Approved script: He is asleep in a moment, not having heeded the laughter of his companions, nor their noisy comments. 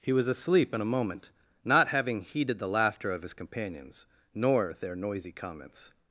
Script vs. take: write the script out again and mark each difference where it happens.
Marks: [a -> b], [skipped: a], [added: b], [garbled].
He [is -> was] asleep in a moment, not having heeded the laughter of his companions, nor their noisy comments.